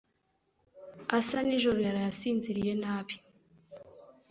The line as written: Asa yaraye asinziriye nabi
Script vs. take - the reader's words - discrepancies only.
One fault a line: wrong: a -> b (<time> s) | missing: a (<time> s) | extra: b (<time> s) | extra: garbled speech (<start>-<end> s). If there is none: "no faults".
extra: nijoro (1.4 s)